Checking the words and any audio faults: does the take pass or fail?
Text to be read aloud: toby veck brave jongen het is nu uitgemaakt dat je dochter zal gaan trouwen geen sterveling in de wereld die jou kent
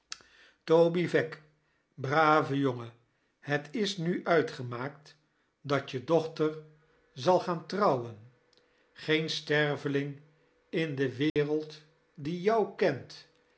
fail